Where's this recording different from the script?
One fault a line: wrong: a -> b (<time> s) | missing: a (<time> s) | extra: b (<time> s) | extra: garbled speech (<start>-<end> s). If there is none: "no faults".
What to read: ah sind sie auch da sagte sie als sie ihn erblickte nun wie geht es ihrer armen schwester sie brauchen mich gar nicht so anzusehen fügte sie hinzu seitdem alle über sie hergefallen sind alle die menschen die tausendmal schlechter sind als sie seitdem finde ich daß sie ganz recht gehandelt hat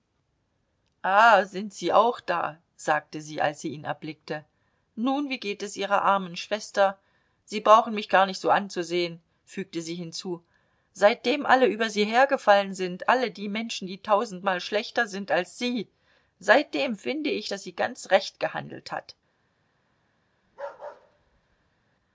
no faults